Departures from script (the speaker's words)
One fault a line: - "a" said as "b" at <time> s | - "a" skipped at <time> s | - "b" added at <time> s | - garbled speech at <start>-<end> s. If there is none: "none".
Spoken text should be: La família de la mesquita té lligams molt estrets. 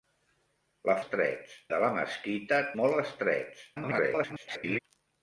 - "família" said as "estrets" at 1.0 s
- "té lligams" skipped at 2.6 s
- garbled speech at 3.7-4.8 s